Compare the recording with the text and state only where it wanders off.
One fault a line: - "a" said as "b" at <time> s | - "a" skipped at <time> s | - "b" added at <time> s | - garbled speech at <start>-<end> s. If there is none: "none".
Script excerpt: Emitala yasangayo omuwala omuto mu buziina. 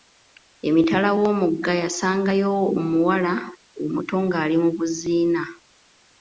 - "w'omugga" added at 1.2 s
- "ng'ali" added at 4.3 s